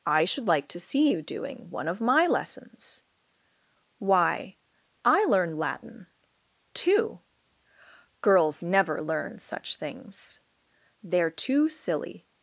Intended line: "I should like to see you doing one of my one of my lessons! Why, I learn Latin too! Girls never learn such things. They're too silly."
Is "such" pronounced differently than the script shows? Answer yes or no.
no